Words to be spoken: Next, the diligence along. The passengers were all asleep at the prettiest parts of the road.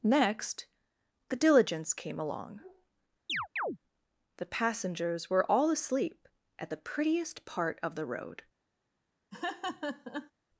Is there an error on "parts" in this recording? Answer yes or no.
yes